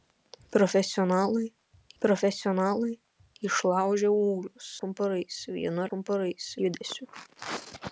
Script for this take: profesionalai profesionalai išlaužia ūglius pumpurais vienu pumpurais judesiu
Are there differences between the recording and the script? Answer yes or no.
no